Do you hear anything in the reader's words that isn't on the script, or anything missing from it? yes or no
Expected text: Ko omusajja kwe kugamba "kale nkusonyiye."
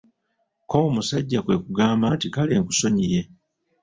yes